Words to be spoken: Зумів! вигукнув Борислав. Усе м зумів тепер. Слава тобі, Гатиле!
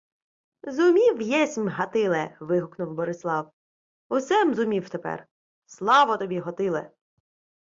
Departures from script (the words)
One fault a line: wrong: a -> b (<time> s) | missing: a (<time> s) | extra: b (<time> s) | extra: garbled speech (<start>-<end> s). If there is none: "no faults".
extra: єсмь Гатиле (1.2 s)